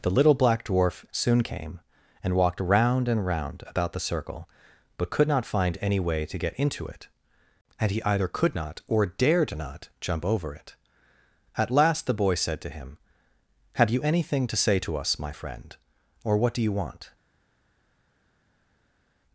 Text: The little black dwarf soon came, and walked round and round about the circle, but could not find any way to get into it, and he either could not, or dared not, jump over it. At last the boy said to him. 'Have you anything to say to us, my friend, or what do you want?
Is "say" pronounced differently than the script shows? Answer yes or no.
no